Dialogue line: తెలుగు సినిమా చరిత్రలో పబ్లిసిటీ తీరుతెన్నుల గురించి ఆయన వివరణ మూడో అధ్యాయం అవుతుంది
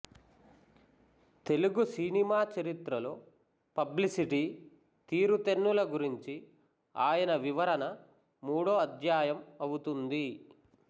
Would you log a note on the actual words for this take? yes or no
no